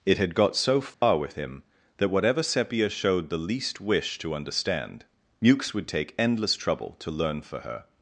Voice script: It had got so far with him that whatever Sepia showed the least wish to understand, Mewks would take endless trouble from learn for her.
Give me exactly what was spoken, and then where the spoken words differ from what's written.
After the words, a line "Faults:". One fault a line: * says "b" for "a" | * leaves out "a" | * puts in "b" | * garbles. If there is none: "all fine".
It had got so far with him that whatever Sepia showed the least wish to understand, Mewks would take endless trouble to learn for her.
Faults:
* says "to" for "from"